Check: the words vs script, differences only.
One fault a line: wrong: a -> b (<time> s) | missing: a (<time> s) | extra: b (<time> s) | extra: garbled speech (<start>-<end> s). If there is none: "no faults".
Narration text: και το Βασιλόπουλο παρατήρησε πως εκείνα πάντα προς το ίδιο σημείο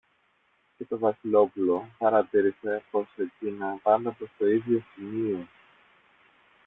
no faults